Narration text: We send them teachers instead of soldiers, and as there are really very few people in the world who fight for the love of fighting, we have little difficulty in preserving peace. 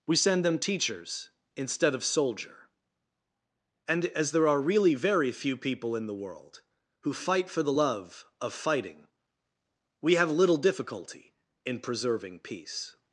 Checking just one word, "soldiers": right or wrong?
wrong